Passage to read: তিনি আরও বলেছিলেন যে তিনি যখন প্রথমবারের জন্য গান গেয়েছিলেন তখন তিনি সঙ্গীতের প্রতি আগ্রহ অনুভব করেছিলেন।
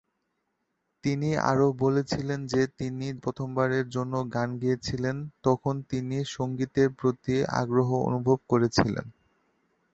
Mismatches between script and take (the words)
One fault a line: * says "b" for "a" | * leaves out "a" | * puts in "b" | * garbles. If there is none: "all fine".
* leaves out "যখন"